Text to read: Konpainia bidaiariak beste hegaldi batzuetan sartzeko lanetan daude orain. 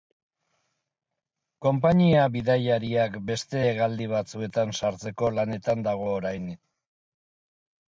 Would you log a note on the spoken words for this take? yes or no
yes